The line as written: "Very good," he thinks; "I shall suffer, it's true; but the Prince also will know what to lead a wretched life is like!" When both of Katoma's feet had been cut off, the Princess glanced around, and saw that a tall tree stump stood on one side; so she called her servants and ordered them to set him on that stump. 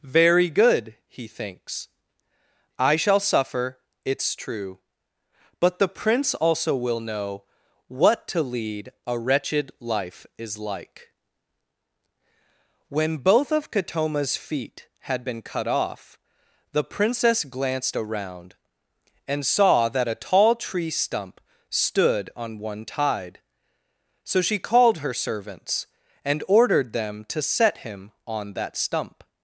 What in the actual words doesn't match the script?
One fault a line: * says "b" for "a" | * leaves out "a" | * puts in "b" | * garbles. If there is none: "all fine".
* says "tide" for "side"